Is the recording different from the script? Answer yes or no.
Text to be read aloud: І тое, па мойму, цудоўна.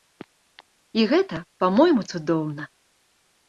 yes